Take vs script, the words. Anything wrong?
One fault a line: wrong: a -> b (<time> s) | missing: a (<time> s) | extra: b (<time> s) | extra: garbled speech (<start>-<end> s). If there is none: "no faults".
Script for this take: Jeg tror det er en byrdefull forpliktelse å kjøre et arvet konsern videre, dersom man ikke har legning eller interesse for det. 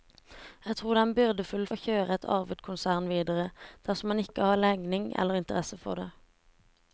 missing: forpliktelse (1.6 s)